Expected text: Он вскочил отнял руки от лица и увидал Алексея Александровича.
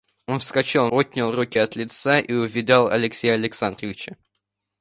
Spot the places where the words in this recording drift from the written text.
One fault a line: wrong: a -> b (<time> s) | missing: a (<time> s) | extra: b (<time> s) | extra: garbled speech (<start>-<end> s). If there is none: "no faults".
no faults